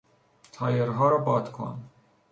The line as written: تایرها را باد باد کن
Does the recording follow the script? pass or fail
fail